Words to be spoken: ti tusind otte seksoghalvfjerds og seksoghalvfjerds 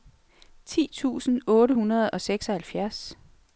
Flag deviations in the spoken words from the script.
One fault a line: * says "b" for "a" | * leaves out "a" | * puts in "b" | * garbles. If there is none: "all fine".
* says "hundrede" for "seksoghalvfjerds"